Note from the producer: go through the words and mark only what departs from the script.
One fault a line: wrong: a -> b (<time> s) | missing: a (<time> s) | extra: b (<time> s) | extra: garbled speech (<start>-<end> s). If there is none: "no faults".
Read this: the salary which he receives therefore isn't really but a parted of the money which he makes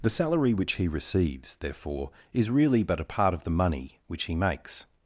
wrong: isn't -> is (2.3 s)
wrong: parted -> part (3.0 s)